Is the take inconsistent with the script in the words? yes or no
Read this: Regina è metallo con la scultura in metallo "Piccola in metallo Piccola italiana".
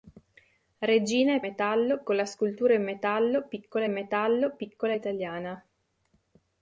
no